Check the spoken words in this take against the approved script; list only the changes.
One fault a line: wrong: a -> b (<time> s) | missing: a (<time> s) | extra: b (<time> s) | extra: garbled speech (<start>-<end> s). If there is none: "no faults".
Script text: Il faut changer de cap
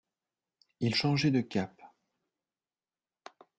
missing: faut (0.9 s)